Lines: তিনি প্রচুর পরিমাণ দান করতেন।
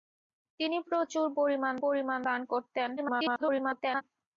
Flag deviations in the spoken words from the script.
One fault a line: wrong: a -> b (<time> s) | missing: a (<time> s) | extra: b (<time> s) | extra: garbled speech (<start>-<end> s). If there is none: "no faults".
extra: পরিমাণ (1.8 s)
extra: garbled speech (3.0-4.0 s)